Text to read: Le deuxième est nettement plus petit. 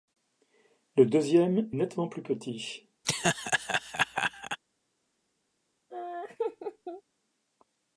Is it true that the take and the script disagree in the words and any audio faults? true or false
true